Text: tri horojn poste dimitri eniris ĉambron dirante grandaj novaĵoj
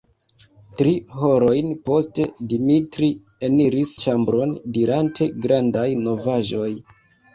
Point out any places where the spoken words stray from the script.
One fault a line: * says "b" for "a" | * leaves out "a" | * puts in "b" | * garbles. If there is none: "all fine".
all fine